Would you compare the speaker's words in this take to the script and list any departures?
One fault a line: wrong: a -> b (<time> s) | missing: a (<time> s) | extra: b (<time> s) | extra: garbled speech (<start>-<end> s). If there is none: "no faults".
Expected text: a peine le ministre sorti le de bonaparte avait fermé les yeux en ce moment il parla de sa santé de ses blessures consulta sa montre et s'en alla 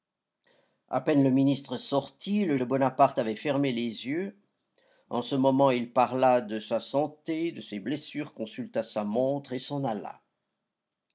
no faults